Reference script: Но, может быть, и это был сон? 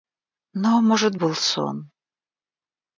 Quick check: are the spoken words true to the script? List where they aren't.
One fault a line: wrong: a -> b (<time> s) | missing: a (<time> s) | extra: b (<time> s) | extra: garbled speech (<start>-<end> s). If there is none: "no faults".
missing: быть и это (1.1 s)